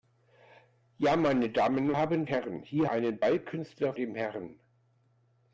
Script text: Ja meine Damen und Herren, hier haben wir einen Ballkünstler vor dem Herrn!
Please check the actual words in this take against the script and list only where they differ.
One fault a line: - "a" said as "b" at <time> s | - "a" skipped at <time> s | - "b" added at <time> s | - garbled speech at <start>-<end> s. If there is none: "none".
- "und" said as "haben" at 2.0 s
- "haben wir" skipped at 2.9 s
- "vor" skipped at 3.9 s